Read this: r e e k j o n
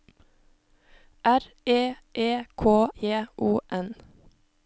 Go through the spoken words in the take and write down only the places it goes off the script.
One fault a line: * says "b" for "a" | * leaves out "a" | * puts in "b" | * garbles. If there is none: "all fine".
all fine